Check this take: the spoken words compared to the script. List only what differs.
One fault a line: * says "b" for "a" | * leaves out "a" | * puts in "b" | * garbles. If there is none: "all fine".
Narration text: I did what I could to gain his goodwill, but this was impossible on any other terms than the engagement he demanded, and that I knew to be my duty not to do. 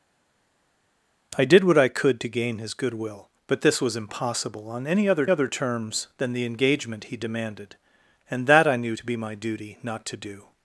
* puts in "other"